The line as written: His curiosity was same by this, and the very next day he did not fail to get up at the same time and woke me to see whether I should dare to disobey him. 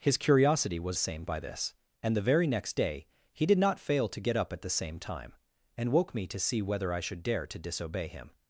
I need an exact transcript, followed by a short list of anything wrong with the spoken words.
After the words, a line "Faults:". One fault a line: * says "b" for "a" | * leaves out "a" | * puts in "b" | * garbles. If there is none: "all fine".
His curiosity was same by this, and the very next day he did not fail to get up at the same time and woke me to see whether I should dare to disobey him.
Faults:
all fine